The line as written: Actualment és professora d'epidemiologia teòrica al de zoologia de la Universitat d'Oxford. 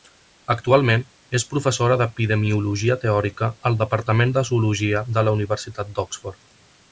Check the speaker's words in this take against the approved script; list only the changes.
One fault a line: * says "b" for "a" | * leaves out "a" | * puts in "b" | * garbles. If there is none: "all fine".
* puts in "departament"